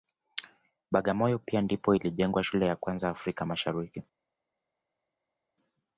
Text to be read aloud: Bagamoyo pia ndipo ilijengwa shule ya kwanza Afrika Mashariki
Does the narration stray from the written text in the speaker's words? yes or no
no